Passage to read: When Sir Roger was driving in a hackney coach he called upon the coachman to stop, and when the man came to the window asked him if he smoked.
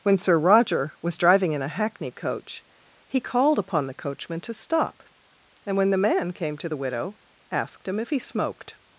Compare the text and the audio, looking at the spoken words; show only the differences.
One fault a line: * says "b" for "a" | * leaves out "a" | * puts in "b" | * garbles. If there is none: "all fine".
* says "widow" for "window"